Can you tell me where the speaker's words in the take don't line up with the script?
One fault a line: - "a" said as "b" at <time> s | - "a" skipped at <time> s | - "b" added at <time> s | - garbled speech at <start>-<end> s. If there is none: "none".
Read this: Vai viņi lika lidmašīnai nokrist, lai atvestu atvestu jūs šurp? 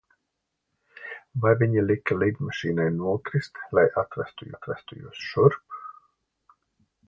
none